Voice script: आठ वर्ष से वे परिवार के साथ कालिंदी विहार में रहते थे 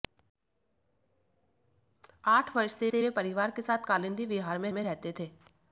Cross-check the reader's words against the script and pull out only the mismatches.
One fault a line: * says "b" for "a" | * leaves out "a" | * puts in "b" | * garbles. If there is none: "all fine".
* puts in "से"
* puts in "में"